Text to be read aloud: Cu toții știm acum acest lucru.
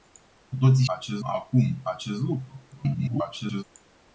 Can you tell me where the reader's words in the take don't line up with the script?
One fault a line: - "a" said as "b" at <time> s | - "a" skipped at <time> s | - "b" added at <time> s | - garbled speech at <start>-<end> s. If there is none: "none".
- "știm" said as "acest" at 0.8 s
- garbled speech at 2.7-3.6 s